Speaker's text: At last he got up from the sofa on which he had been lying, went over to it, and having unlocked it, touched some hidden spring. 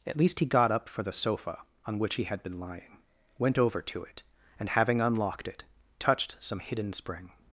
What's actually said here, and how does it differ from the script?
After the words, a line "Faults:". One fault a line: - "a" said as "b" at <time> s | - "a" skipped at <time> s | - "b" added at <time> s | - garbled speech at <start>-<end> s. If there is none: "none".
At least he got up for the sofa on which he had been lying, went over to it, and having unlocked it, touched some hidden spring.
Faults:
- "last" said as "least" at 0.2 s
- "from" said as "for" at 0.9 s